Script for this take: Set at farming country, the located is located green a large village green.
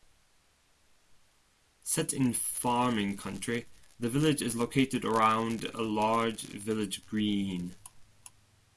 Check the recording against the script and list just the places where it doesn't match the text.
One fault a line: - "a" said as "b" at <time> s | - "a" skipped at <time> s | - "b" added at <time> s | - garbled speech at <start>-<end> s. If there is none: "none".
- "at" said as "in" at 2.1 s
- "located" said as "village" at 4.1 s
- "green" said as "around" at 5.0 s